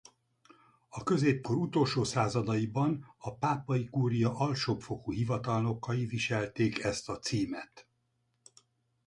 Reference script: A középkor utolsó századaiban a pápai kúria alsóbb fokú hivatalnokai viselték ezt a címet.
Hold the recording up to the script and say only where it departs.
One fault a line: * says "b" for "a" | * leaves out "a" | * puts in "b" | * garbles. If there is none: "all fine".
all fine